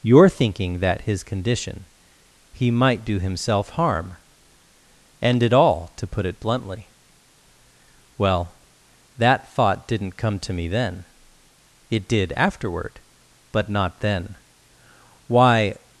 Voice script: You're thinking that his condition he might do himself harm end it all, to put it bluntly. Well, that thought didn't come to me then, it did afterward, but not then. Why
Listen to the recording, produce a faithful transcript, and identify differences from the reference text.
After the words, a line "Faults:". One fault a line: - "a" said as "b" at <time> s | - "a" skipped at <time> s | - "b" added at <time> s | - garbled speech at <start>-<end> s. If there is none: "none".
You're thinking that his condition he might do himself harm end it all, to put it bluntly. Well, that thought didn't come to me then, it did afterward, but not then. Why
Faults:
none